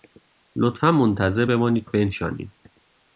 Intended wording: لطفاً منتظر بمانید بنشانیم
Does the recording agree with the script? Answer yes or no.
yes